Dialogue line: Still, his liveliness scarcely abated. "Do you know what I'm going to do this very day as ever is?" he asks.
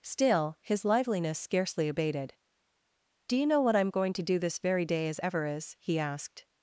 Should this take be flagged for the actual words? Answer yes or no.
yes